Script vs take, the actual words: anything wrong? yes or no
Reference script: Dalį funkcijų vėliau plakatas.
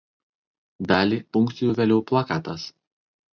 no